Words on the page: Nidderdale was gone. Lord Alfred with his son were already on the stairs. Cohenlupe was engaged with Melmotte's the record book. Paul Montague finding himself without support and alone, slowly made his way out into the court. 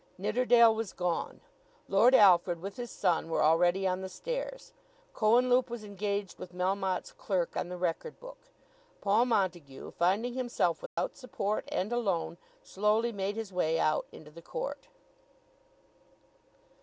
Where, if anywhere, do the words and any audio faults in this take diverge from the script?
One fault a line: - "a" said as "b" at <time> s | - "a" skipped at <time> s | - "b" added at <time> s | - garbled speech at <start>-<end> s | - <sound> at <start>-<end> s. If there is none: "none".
- "clerk on" added at 7.1 s
- dropout at 10.9-11.0 s